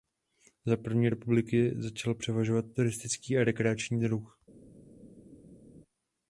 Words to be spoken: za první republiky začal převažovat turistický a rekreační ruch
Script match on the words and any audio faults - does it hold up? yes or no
yes